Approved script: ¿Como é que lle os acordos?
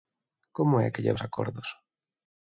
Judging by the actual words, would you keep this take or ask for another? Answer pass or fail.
pass